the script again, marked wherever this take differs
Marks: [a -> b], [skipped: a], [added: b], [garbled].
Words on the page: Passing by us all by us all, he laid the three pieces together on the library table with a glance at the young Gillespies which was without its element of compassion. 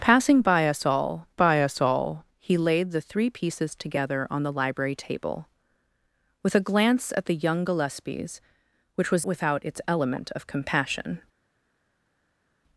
Passing by us all by us all, he laid the three pieces together on the library table with a glance at the young Gillespies which was without its element of compassion.